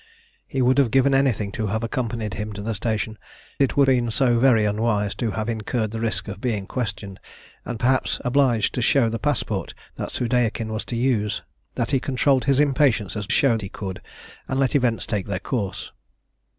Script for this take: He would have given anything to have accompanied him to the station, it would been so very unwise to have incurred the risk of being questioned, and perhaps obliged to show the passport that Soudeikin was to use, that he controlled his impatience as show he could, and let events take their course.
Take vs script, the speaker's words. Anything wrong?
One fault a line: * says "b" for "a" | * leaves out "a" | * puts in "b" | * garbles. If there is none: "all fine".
all fine